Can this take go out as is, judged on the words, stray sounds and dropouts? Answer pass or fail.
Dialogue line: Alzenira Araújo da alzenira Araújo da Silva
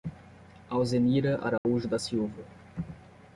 fail